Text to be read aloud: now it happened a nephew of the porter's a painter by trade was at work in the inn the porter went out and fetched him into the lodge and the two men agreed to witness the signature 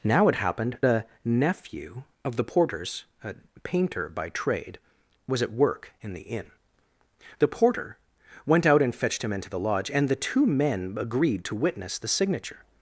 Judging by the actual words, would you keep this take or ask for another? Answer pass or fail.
pass